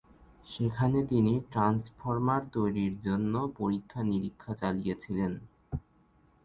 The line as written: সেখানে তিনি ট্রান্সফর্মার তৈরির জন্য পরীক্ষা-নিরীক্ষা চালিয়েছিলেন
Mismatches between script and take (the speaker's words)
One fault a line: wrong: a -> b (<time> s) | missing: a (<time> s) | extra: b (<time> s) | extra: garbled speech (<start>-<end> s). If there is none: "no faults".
no faults